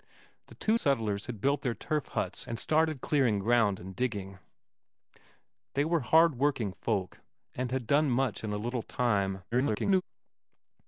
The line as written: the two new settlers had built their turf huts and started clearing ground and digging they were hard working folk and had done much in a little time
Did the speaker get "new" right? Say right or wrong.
wrong